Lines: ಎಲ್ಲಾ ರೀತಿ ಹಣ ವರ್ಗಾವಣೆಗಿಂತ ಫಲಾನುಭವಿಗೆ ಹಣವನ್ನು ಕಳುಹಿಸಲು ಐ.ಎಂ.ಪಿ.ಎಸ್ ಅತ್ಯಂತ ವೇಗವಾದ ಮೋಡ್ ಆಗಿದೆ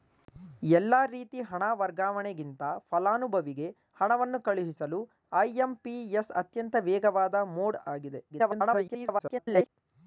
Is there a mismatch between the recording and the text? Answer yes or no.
yes